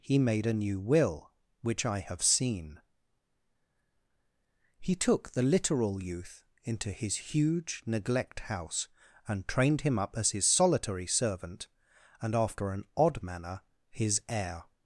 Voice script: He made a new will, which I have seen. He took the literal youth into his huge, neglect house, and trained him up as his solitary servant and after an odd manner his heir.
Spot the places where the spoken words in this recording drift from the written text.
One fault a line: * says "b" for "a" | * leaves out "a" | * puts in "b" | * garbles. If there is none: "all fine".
all fine